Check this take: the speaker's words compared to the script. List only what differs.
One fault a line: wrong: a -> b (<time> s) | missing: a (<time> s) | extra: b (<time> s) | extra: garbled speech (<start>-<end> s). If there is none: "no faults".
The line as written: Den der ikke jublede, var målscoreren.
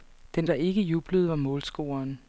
no faults